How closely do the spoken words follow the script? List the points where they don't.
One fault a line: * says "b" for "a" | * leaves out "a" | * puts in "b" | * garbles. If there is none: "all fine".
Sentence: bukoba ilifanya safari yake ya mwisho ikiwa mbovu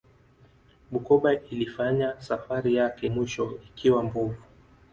* leaves out "ya"